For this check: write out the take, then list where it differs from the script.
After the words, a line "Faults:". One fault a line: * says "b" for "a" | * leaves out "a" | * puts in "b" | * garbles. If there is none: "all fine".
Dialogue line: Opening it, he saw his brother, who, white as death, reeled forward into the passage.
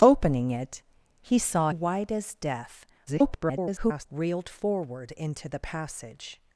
Opening it, he saw white as death, [garbled] reeled forward into the passage.
Faults:
* leaves out "his brother who"
* garbles